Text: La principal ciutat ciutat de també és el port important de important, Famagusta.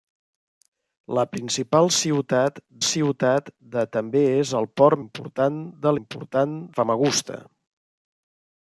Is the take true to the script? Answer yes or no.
yes